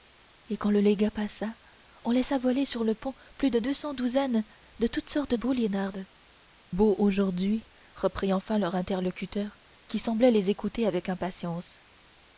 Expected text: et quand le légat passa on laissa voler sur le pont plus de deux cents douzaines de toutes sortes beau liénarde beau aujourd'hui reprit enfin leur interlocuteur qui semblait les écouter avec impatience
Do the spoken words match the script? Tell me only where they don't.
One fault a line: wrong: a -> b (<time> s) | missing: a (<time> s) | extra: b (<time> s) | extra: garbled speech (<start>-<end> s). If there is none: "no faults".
no faults